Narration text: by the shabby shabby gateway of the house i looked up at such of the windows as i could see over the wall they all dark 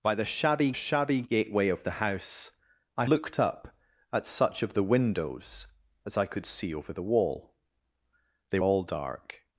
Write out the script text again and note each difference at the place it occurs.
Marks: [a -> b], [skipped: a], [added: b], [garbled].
by the shabby shabby gateway of the house i looked up at such of the windows as i could see over the wall they all dark